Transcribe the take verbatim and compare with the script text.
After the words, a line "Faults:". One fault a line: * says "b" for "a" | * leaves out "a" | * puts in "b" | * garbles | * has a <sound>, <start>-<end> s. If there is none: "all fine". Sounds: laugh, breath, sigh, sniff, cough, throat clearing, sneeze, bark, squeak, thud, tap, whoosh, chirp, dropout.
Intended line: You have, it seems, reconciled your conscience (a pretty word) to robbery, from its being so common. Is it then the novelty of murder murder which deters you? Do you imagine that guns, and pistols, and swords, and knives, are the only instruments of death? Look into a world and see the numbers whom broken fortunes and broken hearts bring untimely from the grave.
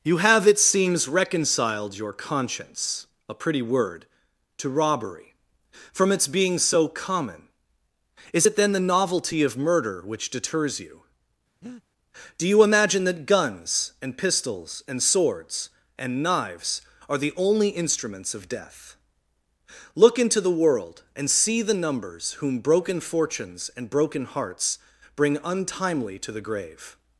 You have, it seems, reconciled your conscience (a pretty word) to robbery, from its being so common. Is it then the novelty of murder which deters you? Do you imagine that guns, and pistols, and swords, and knives, are the only instruments of death? Look into the world and see the numbers whom broken fortunes and broken hearts bring untimely to the grave.
Faults:
* leaves out "murder"
* has a breath, 11.6-11.8 s
* says "the" for "a"
* says "to" for "from"